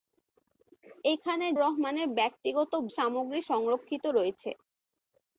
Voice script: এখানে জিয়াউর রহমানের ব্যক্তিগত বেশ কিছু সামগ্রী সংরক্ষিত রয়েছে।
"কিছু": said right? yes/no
no